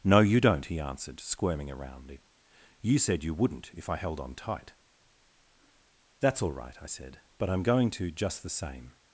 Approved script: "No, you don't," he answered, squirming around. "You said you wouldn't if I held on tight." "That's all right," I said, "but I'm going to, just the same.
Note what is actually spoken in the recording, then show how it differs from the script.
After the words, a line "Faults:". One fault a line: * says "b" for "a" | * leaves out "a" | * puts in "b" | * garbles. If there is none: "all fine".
"No, you don't," he answered, squirming around. "You said you wouldn't if I held on tight." "That's all right," I said, "but I'm going to, just the same.
Faults:
all fine